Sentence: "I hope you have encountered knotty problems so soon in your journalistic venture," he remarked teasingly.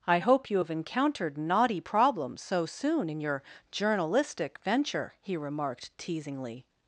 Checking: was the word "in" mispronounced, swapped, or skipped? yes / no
no